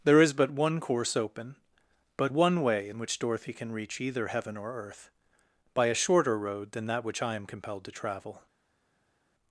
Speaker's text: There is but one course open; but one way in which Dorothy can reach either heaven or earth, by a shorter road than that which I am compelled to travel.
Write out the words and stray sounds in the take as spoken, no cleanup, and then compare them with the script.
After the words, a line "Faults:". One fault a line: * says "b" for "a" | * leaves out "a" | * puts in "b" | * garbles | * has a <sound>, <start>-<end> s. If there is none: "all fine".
There is but one course open; but one way in which Dorothy can reach either heaven or earth, by a shorter road than that which I am compelled to travel.
Faults:
all fine